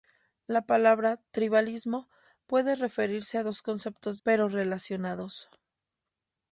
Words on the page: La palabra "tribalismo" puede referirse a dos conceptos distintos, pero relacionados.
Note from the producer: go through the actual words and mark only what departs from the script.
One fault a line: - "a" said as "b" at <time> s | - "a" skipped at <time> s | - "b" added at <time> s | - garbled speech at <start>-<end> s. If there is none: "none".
- "distintos" skipped at 4.2 s